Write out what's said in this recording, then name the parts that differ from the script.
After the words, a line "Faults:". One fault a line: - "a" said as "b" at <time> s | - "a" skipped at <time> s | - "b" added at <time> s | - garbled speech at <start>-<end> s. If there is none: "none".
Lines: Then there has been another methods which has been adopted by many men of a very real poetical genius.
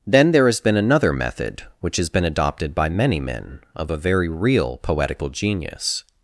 Then there has been another method which has been adopted by many men of a very real poetical genius.
Faults:
- "methods" said as "method" at 1.1 s